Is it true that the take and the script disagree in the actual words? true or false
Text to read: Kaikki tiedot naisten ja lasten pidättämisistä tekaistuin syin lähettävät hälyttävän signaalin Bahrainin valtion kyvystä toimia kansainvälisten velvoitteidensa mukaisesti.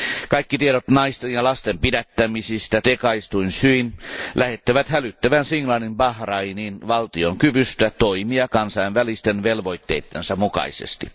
false